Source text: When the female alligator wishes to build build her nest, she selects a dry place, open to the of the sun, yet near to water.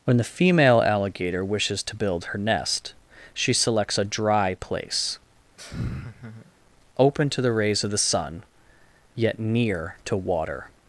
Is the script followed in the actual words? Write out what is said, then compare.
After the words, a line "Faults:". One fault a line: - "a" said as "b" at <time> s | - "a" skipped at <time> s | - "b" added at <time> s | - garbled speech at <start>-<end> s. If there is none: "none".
When the female alligator wishes to build her nest, she selects a dry place, open to the rays of the sun, yet near to water.
Faults:
- "build" skipped at 2.3 s
- "rays" added at 7.5 s